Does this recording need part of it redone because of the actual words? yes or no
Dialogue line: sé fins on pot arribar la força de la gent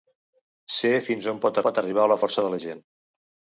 yes